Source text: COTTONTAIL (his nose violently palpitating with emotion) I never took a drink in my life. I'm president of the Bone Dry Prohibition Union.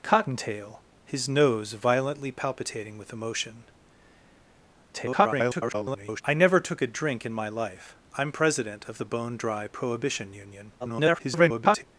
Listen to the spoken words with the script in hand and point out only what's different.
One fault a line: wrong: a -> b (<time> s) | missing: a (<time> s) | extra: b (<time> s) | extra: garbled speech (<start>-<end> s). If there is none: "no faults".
extra: garbled speech (4.9-6.2 s)
extra: garbled speech (10.8-11.8 s)